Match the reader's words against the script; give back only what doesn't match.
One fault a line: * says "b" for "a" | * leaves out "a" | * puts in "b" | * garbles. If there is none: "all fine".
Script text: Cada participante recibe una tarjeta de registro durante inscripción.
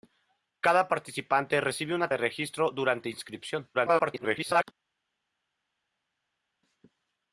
* leaves out "tarjeta"
* garbles